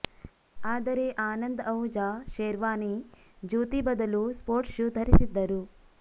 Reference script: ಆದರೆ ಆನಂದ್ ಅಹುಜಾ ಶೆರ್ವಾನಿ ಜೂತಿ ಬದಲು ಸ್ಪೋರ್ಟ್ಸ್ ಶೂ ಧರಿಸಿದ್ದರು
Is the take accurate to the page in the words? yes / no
yes